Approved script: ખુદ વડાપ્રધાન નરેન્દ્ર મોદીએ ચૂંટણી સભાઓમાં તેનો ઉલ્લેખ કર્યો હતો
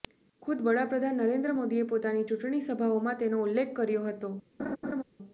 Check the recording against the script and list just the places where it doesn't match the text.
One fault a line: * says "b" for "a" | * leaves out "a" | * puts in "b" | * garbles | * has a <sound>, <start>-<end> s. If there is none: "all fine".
* puts in "પોતાની"
* has a laugh, 4.6-5.0 s